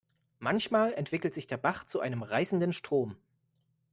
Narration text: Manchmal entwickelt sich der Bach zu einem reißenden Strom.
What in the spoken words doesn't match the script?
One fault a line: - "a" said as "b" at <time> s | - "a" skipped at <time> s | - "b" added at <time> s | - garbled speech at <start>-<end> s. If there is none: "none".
none